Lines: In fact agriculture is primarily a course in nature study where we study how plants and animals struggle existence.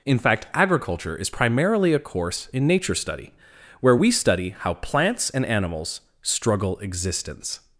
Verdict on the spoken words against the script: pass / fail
pass